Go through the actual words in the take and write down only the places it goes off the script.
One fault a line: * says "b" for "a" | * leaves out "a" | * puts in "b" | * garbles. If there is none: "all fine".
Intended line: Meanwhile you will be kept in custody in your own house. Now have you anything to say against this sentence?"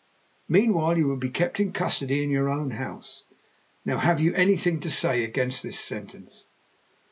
all fine